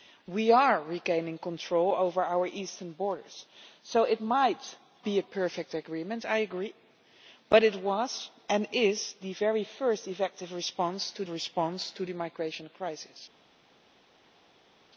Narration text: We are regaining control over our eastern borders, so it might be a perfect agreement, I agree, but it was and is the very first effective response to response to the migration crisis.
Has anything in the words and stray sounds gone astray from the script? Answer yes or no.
no